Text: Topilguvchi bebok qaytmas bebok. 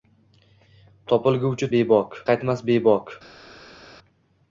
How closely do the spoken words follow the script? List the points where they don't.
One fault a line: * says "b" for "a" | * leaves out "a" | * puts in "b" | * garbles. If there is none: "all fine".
all fine